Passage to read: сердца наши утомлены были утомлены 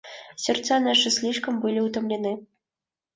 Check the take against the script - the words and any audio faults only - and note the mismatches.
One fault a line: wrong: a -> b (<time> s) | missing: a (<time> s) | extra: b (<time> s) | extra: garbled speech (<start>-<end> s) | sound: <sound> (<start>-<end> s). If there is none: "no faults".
wrong: утомлены -> слишком (1.1 s)